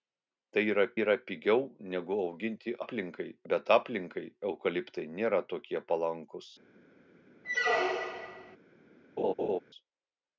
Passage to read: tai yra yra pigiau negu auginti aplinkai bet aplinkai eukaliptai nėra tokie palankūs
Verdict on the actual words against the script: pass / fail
pass